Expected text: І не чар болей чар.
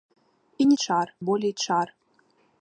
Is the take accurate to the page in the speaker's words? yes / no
yes